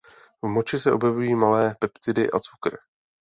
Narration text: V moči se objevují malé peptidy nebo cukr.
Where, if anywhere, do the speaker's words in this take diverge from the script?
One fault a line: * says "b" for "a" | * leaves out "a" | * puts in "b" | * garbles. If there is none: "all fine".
* says "a" for "nebo"